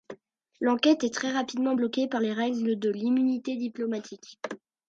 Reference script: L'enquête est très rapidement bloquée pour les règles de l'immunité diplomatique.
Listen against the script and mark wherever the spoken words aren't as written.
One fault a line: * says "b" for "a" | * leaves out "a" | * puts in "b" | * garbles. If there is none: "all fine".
* says "par" for "pour"